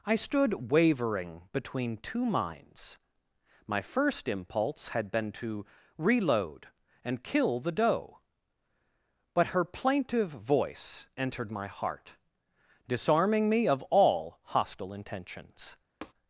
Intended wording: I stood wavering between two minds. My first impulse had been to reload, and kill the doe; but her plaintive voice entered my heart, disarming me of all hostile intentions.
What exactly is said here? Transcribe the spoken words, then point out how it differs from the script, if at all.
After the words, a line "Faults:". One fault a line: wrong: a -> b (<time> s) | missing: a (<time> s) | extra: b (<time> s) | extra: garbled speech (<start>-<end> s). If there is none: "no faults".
I stood wavering between two minds. My first impulse had been to reload, and kill the doe; but her plaintive voice entered my heart, disarming me of all hostile intentions.
Faults:
no faults